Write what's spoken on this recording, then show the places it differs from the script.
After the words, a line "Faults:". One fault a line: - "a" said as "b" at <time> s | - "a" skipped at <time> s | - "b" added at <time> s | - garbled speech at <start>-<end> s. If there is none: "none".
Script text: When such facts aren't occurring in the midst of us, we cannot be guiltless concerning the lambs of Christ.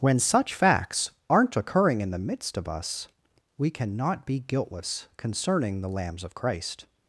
When such facts aren't occurring in the midst of us, we cannot be guiltless concerning the lambs of Christ.
Faults:
none